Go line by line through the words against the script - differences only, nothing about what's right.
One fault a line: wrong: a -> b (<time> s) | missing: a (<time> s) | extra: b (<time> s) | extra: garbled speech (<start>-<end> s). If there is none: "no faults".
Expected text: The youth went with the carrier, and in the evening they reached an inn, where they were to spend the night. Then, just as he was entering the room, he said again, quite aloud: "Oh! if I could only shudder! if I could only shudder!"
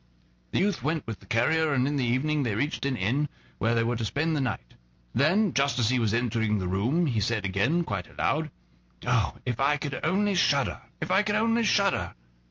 no faults